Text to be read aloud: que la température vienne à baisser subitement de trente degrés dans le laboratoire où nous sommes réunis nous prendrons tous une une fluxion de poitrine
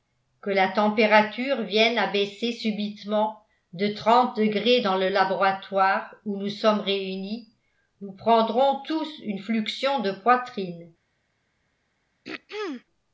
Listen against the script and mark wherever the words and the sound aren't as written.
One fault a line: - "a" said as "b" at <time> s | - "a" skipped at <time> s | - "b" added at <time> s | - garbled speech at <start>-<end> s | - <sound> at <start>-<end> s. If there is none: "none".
- "une" skipped at 9.4 s
- throat clearing at 12.2-12.8 s